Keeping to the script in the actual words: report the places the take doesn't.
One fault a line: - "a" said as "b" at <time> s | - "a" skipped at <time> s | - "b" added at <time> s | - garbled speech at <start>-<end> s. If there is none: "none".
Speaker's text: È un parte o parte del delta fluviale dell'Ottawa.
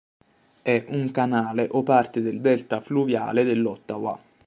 - "parte" said as "canale" at 1.1 s